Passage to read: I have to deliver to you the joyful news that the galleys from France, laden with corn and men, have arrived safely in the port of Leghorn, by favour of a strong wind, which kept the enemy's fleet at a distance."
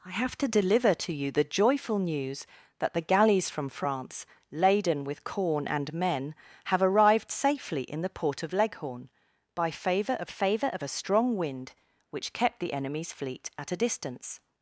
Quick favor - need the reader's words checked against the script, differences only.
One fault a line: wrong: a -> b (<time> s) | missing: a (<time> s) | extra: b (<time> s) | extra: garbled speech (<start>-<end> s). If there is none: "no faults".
extra: favour of (10.3 s)